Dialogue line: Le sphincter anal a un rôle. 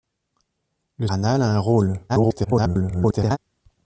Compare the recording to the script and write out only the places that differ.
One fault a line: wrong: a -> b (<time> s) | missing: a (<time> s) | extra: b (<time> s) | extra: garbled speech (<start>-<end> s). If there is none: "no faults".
missing: sphincter (1.1 s)
extra: garbled speech (2.1-3.4 s)